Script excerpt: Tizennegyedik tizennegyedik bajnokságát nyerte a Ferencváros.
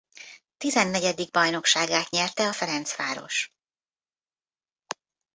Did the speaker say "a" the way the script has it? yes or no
yes